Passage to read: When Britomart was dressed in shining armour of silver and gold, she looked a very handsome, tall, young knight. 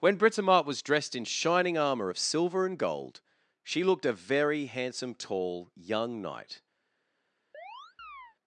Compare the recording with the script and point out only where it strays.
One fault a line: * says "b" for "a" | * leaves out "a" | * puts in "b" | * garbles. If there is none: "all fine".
all fine